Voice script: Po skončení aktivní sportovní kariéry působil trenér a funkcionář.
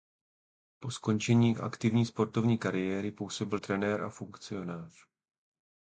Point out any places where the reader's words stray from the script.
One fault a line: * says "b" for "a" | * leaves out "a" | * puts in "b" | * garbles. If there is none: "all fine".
all fine